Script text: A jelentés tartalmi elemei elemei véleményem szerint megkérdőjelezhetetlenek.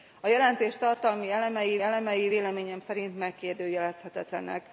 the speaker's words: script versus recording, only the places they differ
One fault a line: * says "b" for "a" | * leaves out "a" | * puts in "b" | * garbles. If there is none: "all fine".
all fine